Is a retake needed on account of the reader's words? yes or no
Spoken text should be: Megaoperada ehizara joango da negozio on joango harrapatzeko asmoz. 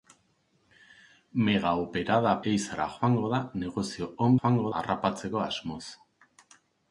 no